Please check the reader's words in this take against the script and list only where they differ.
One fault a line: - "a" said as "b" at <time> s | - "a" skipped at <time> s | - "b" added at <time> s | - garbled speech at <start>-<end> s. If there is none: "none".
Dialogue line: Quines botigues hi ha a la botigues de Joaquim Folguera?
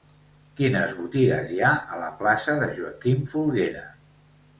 - "botigues" said as "plaça" at 2.2 s